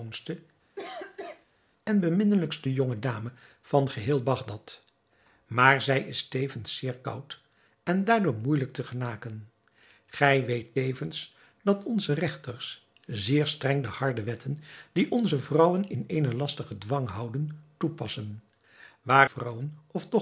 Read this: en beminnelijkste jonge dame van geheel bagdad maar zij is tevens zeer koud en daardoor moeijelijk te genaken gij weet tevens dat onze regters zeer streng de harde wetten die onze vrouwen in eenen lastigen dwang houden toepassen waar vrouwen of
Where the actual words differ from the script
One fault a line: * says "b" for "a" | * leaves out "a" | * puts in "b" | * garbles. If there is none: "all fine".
all fine